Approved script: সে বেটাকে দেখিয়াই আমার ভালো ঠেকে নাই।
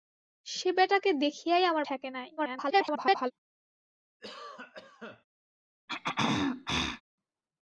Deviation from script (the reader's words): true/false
true